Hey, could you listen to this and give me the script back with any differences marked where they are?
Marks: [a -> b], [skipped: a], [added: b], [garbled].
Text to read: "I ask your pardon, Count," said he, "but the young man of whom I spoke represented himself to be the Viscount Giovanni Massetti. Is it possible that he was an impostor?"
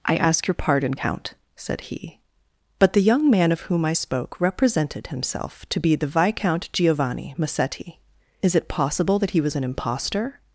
"I ask your pardon, Count," said he, "but the young man of whom I spoke represented himself to be the Viscount Giovanni Massetti. Is it possible that he was an impostor?"